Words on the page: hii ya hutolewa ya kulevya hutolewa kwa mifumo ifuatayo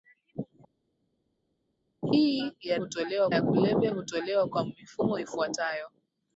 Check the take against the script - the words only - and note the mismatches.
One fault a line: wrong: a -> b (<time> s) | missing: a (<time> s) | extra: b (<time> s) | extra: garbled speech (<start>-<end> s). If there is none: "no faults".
no faults